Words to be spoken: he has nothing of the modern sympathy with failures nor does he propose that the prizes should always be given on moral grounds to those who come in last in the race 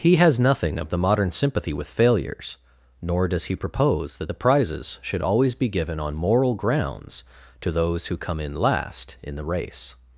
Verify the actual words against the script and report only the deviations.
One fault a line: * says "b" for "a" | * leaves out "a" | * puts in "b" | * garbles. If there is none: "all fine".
all fine